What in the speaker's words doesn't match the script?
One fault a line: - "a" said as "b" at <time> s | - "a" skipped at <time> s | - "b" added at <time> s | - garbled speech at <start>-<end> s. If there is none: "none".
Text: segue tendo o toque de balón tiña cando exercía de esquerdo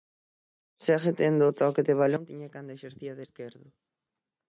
none